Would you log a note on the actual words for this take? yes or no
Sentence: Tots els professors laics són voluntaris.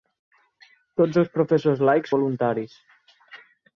yes